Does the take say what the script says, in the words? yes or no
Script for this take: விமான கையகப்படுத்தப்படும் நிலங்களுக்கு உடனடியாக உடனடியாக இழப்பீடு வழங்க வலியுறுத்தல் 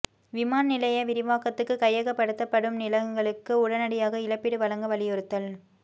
no